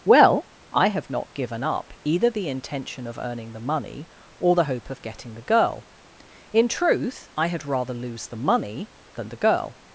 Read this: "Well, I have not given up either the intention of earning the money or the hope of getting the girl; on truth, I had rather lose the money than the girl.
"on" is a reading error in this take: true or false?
true